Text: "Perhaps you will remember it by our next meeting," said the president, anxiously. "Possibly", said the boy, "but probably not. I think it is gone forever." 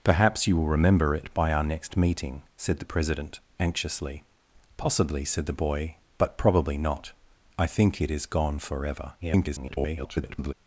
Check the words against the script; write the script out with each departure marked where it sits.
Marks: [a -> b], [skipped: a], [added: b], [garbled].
"Perhaps you will remember it by our next meeting," said the president, anxiously. "Possibly", said the boy, "but probably not. I think it is gone forever." [garbled]